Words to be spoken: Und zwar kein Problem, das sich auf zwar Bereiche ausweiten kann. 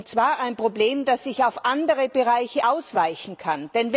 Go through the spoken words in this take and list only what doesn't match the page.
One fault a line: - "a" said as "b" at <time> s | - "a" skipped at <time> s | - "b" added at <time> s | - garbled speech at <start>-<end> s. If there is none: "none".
- "kein" said as "ein" at 0.4 s
- "zwar" said as "andere" at 1.6 s